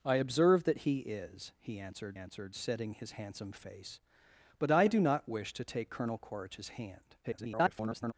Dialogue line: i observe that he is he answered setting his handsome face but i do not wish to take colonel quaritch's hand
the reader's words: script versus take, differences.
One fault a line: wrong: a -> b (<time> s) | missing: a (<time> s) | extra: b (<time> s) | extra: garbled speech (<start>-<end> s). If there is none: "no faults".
extra: answered (2.1 s)
extra: garbled speech (7.2-8.1 s)